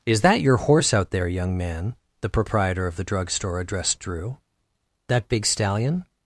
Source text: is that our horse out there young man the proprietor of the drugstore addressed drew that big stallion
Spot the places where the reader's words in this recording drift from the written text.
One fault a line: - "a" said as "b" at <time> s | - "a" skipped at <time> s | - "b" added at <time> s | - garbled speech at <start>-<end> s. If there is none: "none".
- "our" said as "your" at 0.4 s